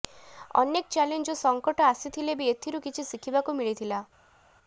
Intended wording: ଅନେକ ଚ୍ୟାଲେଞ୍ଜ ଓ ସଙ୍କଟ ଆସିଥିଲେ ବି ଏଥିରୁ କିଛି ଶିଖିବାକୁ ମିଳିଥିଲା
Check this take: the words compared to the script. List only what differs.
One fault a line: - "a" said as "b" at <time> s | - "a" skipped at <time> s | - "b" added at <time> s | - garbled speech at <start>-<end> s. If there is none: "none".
none